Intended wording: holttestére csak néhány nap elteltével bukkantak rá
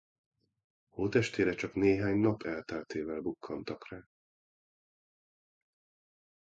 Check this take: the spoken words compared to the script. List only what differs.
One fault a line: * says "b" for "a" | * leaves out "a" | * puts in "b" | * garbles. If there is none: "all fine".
all fine